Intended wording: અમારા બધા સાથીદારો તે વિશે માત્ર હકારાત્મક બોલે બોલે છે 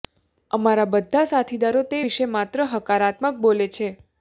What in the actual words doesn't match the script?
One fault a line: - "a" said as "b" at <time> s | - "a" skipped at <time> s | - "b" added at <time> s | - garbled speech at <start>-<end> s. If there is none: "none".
- "બોલે" skipped at 3.7 s